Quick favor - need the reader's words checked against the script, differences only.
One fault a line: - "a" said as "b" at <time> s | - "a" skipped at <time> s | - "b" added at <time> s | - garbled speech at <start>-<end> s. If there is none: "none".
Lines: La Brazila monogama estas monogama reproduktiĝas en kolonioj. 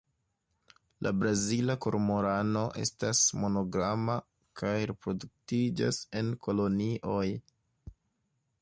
- "monogama" said as "kormorano" at 1.9 s
- "kaj" added at 4.6 s